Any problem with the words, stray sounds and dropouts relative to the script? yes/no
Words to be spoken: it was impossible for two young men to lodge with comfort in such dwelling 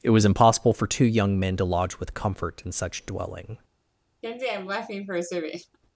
yes